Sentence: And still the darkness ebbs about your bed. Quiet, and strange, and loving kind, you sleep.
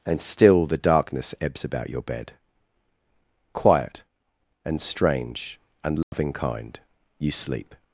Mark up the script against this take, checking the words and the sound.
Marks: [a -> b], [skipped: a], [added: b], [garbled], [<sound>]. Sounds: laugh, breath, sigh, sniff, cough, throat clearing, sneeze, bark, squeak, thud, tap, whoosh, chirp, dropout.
And still the darkness ebbs about your bed. Quiet, and strange, and loving [dropout] kind, you sleep.